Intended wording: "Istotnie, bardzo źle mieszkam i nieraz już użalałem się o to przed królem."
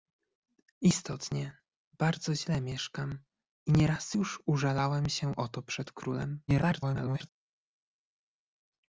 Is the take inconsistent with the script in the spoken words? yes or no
yes